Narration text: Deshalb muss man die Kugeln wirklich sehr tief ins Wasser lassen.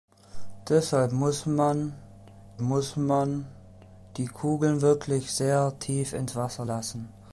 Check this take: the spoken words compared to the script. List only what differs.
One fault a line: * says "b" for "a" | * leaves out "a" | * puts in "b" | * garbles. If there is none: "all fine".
* puts in "muss man"